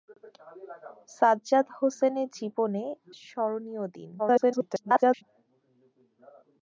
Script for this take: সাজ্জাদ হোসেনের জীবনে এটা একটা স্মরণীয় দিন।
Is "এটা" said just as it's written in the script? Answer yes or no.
no